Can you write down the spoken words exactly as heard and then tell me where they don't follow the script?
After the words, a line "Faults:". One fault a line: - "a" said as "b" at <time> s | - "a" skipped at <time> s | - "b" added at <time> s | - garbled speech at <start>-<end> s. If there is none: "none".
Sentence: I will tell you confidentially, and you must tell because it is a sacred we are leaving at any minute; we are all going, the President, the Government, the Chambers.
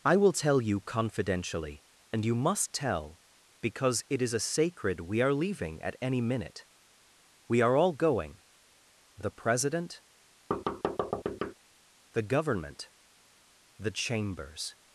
I will tell you confidentially, and you must tell because it is a sacred we are leaving at any minute; we are all going, the President, the Government, the Chambers.
Faults:
none